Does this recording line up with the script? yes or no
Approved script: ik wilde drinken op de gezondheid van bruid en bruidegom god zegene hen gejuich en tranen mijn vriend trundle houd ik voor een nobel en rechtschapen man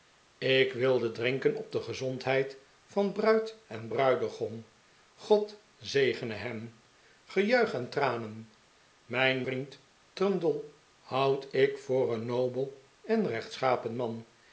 yes